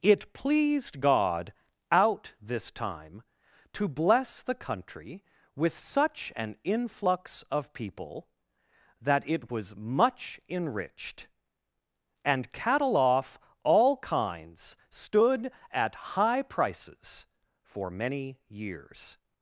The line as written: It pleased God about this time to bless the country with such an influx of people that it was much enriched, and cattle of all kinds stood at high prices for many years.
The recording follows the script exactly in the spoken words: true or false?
false